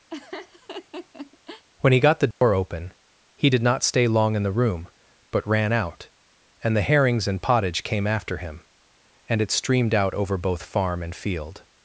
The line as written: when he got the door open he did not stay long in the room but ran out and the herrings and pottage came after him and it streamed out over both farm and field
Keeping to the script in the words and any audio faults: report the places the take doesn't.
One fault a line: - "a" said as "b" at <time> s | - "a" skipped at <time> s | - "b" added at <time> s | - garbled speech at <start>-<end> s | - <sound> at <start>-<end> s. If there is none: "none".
- laugh at 0.1-1.6 s
- dropout at 2.3-2.4 s